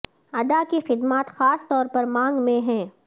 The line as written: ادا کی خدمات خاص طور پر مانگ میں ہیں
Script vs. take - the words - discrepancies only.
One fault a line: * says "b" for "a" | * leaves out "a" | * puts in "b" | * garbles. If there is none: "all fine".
all fine